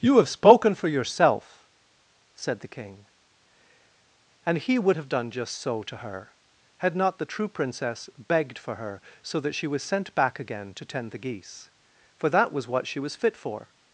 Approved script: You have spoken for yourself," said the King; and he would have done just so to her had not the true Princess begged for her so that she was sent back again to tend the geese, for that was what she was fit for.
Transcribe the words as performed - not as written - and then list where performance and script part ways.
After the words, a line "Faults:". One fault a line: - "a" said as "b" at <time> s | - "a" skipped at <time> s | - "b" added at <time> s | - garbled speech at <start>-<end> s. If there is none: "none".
You have spoken for yourself," said the King; and he would have done just so to her had not the true Princess begged for her so that she was sent back again to tend the geese, for that was what she was fit for.
Faults:
none